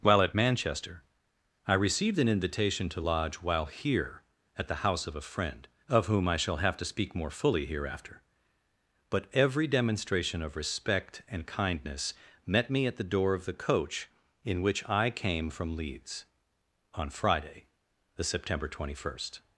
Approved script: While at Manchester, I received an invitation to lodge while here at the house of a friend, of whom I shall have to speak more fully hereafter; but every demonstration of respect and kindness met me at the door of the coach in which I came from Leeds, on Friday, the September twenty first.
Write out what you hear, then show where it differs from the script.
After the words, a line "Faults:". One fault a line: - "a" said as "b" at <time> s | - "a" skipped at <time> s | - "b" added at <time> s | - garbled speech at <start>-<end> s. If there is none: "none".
While at Manchester, I received an invitation to lodge while here at the house of a friend, of whom I shall have to speak more fully hereafter; but every demonstration of respect and kindness met me at the door of the coach in which I came from Leeds, on Friday, the September twenty first.
Faults:
none